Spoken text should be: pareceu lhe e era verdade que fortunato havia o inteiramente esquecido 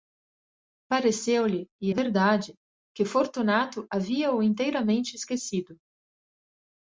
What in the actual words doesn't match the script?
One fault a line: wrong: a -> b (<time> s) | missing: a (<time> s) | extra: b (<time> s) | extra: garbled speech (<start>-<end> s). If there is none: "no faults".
missing: era (1.9 s)